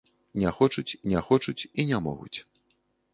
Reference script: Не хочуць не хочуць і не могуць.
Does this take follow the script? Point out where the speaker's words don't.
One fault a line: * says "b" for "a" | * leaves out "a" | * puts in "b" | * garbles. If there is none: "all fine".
all fine